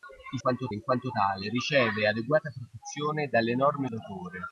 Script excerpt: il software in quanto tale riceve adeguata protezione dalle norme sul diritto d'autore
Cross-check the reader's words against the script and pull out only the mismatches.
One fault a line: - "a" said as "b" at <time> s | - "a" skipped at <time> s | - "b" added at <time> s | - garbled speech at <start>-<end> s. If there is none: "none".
- "software" said as "quanto" at 0.4 s
- "sul diritto" skipped at 3.9 s